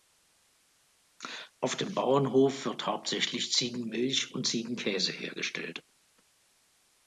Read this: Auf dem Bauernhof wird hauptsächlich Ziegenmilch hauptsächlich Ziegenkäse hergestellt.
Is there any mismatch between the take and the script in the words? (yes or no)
yes